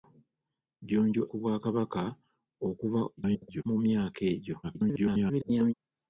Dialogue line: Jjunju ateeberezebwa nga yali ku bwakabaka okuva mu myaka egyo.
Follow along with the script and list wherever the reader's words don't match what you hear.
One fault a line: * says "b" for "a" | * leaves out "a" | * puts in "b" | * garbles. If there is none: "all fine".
* leaves out "ateeberezebwa nga yali"
* garbles
* garbles